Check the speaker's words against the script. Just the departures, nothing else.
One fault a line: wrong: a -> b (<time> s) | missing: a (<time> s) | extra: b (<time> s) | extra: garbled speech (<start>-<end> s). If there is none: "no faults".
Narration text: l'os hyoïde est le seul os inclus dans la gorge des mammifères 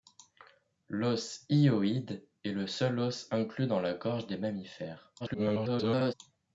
extra: garbled speech (5.2-6.1 s)